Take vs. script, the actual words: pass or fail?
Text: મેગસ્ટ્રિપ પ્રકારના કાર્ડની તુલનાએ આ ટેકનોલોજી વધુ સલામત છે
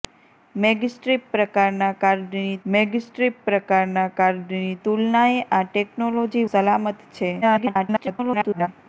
fail